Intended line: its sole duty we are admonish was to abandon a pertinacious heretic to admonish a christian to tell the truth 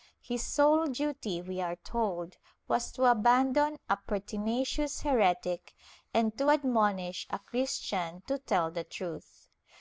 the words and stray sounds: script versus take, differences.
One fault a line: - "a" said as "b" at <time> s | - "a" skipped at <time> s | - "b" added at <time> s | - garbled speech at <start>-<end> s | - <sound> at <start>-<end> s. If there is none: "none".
- "its" said as "his" at 0.2 s
- "admonish" said as "told" at 1.8 s
- "and" added at 6.1 s